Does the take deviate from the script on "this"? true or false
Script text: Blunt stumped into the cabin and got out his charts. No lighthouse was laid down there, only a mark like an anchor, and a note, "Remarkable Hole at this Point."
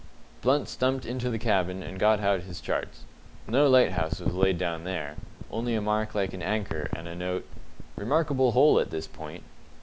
false